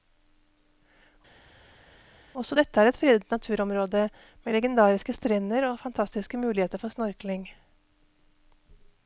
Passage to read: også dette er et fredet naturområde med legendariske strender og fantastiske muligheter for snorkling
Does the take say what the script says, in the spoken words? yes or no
yes